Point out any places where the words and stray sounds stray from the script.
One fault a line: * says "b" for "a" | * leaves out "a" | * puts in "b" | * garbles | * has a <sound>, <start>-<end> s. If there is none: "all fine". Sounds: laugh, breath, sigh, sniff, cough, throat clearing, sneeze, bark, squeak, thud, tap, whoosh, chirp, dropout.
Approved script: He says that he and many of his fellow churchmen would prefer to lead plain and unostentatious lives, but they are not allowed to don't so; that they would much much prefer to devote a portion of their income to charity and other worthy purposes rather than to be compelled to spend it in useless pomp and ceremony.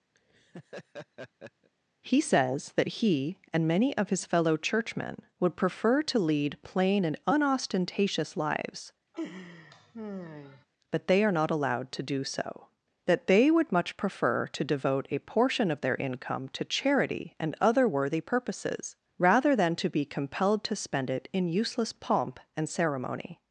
* has a laugh, 0.1-1.7 s
* has a laugh, 9.1-10.7 s
* says "do" for "don't"
* leaves out "much"